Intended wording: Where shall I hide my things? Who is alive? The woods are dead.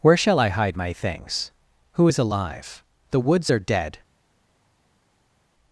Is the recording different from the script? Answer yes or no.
no